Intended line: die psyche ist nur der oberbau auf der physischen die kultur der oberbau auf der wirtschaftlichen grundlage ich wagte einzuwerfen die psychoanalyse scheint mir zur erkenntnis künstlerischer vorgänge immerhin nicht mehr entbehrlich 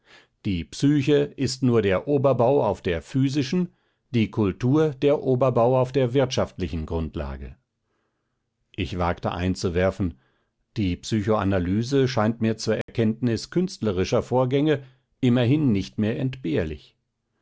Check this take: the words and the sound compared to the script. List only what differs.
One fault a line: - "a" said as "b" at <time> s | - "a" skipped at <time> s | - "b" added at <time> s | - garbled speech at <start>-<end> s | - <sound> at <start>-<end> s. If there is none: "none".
- dropout at 12.8-12.9 s